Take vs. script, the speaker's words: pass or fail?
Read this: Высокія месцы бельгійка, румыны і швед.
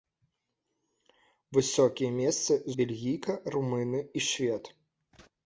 pass